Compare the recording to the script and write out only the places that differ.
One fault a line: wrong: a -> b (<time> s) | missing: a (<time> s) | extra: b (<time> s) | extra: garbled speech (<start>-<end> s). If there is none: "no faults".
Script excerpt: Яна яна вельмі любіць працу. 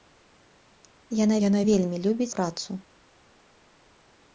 no faults